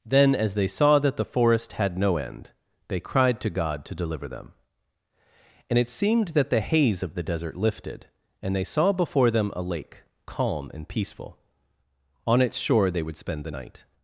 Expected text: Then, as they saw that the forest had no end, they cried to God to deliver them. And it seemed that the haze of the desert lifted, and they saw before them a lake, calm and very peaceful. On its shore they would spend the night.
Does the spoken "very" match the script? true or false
false